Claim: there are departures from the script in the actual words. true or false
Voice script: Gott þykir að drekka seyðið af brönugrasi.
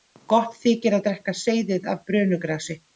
false